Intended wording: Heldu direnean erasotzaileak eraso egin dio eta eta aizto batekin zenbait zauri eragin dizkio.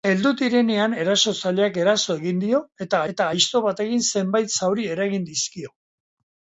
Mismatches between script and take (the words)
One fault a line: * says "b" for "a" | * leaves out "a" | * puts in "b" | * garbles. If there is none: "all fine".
all fine